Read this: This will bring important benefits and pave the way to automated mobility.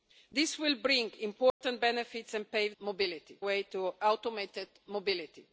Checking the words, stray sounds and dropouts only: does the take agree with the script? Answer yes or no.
no